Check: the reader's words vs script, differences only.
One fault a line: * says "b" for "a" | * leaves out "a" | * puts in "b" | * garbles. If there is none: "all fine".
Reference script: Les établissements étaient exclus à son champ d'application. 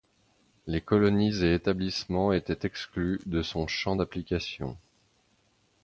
* puts in "colonies et"
* says "de" for "à"